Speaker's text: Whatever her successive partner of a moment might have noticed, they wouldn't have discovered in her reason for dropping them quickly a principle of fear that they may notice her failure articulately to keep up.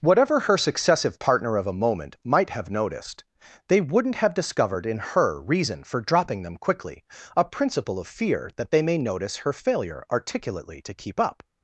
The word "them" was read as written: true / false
true